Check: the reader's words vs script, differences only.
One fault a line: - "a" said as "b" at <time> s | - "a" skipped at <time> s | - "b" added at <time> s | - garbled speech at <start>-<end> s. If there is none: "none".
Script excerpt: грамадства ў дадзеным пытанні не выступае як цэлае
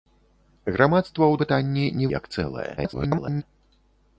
- "дадзеным" skipped at 1.4 s
- "выступае" skipped at 2.1 s
- garbled speech at 2.8-3.4 s